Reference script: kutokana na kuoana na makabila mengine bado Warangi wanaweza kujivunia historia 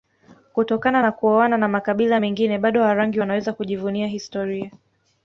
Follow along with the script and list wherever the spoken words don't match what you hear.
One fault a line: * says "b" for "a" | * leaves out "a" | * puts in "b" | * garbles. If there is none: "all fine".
all fine